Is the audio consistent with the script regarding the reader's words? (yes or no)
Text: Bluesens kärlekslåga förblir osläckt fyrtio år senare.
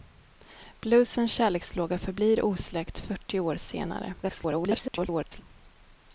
no